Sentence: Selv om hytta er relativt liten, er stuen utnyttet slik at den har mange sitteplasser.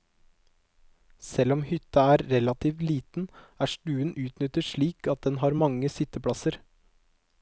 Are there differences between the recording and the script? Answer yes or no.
no